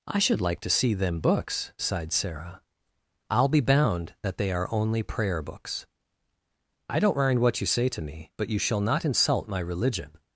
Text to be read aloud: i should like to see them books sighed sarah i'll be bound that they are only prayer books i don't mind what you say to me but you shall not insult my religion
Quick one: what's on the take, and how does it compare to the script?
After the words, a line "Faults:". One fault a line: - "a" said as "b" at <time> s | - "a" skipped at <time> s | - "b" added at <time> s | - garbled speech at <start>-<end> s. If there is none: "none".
i should like to see them books sighed sarah i'll be bound that they are only prayer books i don't mind what you say to me but you shall not insult my religion
Faults:
none